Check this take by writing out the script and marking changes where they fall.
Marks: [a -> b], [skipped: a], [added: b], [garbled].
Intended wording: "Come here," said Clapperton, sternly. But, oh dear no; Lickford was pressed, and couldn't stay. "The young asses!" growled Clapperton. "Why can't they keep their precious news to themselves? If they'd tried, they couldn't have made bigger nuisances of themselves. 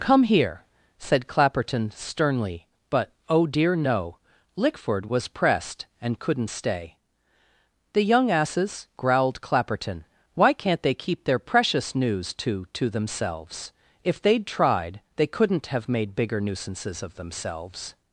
"Come here," said Clapperton, sternly. But, oh dear no; Lickford was pressed, and couldn't stay. "The young asses!" growled Clapperton. "Why can't they keep their precious news to [added: to] themselves? If they'd tried, they couldn't have made bigger nuisances of themselves.